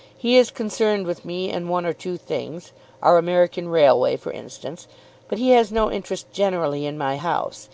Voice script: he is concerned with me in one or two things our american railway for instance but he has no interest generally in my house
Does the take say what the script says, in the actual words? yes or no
yes